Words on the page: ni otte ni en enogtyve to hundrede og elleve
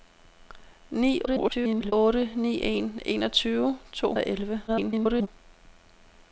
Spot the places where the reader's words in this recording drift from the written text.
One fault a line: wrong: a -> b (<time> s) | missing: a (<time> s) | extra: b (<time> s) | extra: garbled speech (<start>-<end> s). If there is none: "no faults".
extra: garbled speech (1.3-1.9 s)
missing: hundrede (4.1 s)
extra: garbled speech (4.7-5.3 s)